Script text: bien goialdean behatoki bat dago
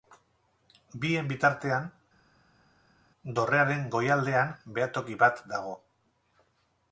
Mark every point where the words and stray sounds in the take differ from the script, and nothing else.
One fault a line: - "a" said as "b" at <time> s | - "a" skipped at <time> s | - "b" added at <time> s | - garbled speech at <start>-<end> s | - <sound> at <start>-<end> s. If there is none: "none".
- "bitartean dorrearen" added at 1.3 s